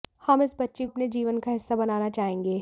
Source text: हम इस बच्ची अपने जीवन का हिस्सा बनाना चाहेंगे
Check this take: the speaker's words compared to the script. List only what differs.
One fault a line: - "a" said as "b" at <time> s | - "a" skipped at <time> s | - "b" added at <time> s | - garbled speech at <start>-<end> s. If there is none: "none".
none